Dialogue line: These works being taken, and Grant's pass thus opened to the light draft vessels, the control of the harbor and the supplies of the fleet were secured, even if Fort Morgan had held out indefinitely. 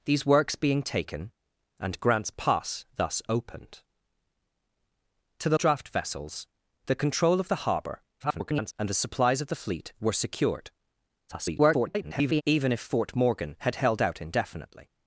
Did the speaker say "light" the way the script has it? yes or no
no